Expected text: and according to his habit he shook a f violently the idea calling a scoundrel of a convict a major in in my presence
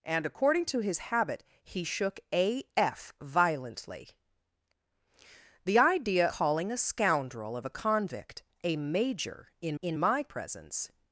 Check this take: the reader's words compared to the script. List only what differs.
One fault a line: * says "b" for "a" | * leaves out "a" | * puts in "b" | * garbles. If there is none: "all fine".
all fine